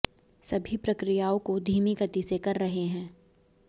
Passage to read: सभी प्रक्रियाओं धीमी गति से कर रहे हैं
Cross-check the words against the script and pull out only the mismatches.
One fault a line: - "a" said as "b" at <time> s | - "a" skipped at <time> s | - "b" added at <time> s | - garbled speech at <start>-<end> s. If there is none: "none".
- "को" added at 1.4 s